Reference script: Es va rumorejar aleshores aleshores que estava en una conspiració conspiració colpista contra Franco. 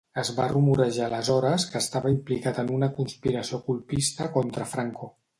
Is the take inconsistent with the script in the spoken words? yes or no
yes